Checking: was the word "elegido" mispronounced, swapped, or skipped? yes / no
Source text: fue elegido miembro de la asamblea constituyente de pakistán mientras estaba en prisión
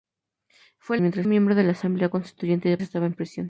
yes